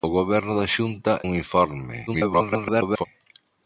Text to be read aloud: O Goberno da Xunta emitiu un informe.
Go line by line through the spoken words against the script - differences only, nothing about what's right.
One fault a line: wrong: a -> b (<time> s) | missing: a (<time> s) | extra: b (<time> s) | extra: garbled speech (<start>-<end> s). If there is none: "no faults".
missing: emitiu (1.1 s)
extra: garbled speech (2.1-3.0 s)